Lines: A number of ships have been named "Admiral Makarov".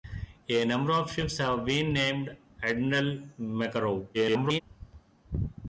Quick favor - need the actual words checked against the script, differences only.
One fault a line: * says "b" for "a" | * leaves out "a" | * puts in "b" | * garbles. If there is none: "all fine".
* garbles